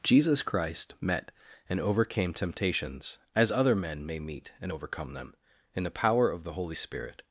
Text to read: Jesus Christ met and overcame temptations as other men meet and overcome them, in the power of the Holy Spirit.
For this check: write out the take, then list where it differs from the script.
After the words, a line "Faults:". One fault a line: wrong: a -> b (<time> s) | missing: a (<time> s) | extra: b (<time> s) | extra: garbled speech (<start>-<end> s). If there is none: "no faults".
Jesus Christ met and overcame temptations as other men may meet and overcome them, in the power of the Holy Spirit.
Faults:
extra: may (4.0 s)